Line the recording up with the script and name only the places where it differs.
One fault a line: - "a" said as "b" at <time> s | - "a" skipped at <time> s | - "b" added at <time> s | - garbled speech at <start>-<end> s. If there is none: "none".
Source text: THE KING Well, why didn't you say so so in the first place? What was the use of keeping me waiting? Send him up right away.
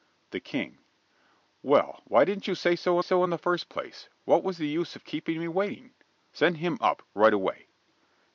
none